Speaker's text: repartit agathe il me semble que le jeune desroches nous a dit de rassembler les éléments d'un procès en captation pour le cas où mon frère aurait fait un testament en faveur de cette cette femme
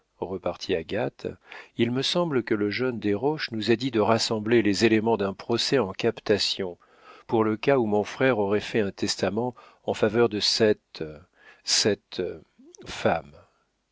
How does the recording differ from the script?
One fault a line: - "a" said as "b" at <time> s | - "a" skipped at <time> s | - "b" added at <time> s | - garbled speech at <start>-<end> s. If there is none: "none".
none